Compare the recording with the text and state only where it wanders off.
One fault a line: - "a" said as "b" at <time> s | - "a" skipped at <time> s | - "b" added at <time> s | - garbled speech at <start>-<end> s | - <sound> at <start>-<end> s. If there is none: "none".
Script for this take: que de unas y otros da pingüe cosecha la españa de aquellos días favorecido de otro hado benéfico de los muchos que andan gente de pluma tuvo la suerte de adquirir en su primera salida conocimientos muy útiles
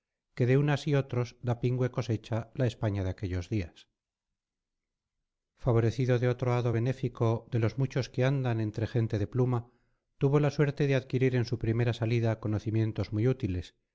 - "entre" added at 8.6 s